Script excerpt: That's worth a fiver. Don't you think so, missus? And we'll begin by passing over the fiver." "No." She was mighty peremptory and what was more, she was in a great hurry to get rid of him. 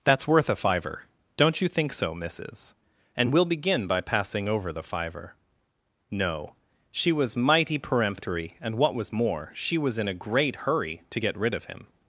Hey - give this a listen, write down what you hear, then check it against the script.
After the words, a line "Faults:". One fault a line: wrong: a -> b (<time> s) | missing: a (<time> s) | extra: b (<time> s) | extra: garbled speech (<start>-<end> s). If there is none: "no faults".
That's worth a fiver. Don't you think so, missus? And we'll begin by passing over the fiver." "No." She was mighty peremptory and what was more, she was in a great hurry to get rid of him.
Faults:
no faults